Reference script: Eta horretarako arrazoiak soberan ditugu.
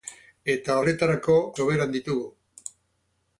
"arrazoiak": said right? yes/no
no